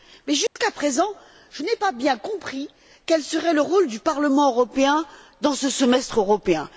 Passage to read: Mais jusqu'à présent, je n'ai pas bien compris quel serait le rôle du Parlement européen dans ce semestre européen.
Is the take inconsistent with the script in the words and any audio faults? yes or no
yes